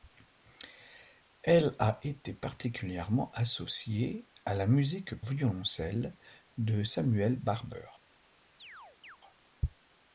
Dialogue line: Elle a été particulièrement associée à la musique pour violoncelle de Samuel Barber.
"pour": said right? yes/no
no